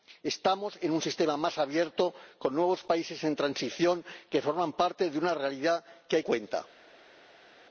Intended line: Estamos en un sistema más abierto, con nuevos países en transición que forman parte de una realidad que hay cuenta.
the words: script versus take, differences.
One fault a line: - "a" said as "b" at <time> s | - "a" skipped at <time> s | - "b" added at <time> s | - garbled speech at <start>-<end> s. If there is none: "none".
none